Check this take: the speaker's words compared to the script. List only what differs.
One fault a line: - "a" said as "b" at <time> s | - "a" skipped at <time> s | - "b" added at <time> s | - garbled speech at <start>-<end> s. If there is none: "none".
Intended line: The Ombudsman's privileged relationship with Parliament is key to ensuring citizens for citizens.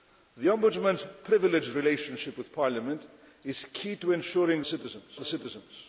none